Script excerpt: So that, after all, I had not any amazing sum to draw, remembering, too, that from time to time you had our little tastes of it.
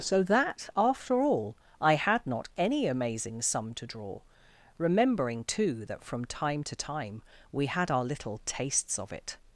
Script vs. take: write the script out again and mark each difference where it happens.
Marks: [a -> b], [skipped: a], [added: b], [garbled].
So that, after all, I had not any amazing sum to draw, remembering, too, that from time to time [you -> we] had our little tastes of it.